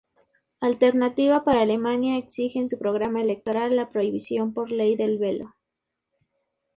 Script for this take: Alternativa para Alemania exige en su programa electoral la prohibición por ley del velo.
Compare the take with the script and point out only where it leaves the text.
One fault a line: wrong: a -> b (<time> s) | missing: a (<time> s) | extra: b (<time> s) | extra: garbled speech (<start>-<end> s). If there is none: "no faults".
no faults